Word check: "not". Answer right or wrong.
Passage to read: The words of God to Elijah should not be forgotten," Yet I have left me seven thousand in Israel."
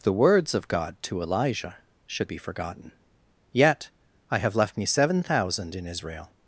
wrong